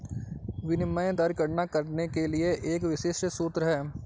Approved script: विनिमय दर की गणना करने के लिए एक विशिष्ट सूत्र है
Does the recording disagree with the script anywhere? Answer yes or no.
yes